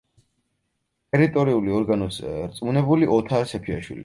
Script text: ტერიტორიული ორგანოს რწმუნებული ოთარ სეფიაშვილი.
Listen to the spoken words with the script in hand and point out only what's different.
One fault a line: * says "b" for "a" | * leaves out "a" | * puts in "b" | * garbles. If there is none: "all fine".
all fine